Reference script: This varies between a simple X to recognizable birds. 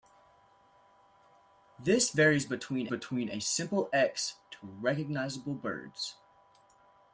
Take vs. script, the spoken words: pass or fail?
fail